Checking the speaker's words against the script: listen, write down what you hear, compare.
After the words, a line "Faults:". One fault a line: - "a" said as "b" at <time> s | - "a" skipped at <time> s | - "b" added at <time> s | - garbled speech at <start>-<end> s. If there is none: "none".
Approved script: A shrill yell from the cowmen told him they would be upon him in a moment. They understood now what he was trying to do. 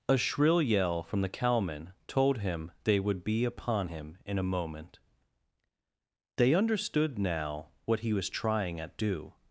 A shrill yell from the cowmen told him they would be upon him in a moment. They understood now what he was trying at do.
Faults:
- "to" said as "at" at 8.8 s